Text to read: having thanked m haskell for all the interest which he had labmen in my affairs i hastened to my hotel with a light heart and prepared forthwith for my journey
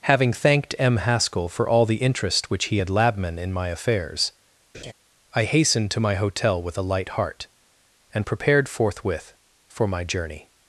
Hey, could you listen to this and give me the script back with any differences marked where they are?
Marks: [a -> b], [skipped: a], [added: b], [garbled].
having thanked m haskell for all the interest which he had labmen in my affairs i hastened to my hotel with a light heart and prepared forthwith for my journey